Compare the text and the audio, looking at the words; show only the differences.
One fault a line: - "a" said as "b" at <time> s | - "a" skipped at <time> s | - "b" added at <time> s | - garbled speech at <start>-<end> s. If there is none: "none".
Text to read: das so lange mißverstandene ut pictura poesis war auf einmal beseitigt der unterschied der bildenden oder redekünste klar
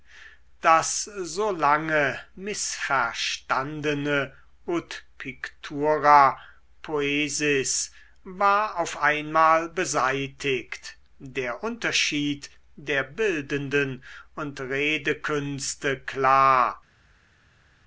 - "oder" said as "und" at 14.4 s